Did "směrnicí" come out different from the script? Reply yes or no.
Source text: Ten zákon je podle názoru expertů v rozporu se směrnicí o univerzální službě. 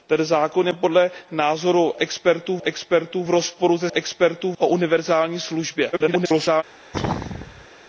yes